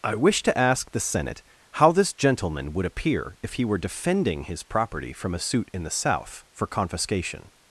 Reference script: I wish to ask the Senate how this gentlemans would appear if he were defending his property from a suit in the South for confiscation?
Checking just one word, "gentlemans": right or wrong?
wrong